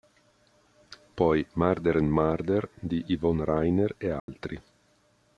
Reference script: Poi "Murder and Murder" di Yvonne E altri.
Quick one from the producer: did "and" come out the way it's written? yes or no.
yes